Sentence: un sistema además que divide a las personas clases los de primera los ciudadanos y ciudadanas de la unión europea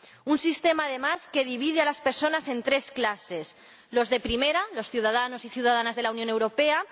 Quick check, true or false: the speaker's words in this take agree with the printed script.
false